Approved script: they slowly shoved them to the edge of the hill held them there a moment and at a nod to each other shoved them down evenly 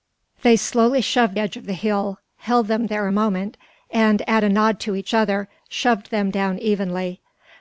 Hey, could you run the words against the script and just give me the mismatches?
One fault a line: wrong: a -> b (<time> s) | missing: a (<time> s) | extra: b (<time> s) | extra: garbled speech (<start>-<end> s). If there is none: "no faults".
missing: them to the (1.4 s)